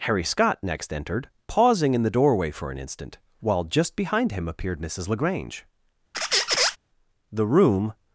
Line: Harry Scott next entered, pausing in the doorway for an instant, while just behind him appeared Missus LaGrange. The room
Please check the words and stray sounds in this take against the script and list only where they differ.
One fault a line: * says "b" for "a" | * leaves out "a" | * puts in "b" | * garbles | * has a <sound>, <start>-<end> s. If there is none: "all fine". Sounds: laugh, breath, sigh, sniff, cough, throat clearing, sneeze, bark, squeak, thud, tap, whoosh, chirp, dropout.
* has a squeak, 6.1-6.8 s